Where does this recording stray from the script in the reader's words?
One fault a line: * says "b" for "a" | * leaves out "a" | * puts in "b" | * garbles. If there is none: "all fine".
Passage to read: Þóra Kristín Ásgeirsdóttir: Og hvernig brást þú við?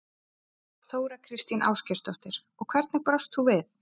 all fine